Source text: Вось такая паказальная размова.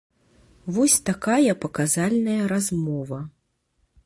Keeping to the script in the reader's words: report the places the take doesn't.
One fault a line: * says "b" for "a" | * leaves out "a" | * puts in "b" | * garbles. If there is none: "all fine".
all fine